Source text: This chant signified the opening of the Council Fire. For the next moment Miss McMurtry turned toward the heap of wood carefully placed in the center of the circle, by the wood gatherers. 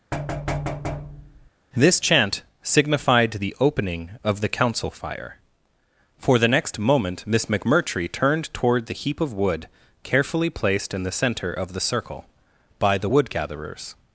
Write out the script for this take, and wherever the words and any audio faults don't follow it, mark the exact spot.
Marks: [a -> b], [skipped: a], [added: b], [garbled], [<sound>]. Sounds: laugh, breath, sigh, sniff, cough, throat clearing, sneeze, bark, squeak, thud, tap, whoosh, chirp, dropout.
[thud] This chant signified the opening of the Council Fire. For the next moment Miss McMurtry turned toward the heap of wood carefully placed in the center of the circle, by the wood gatherers.